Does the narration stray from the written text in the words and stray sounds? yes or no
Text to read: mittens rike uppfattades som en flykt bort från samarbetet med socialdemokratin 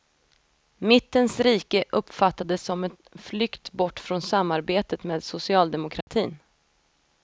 yes